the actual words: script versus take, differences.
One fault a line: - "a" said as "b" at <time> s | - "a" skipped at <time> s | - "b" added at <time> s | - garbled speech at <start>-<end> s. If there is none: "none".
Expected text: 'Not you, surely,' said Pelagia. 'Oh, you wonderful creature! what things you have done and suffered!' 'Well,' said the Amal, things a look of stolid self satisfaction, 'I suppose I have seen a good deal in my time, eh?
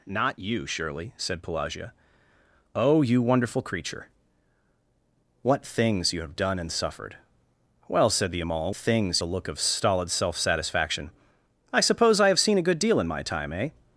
none